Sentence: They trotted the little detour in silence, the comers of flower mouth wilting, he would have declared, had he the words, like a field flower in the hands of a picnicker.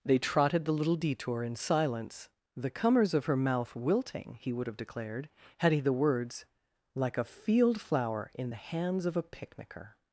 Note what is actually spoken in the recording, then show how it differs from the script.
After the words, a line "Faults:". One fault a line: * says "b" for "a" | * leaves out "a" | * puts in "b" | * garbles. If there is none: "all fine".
They trotted the little detour in silence, the comers of her mouth wilting, he would have declared, had he the words, like a field flower in the hands of a picnicker.
Faults:
* says "her" for "flower"